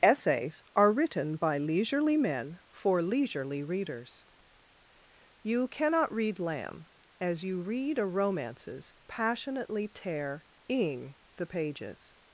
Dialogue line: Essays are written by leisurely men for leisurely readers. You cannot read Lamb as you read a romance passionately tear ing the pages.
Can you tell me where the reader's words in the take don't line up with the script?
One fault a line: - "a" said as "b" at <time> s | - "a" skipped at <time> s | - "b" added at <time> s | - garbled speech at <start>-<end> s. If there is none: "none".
- "romance" said as "romances" at 8.1 s